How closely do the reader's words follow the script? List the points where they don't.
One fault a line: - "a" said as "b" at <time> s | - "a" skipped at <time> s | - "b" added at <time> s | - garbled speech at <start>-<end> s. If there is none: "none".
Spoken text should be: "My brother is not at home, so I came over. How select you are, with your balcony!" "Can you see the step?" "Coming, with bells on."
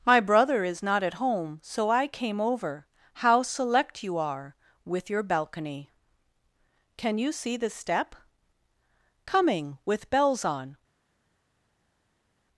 none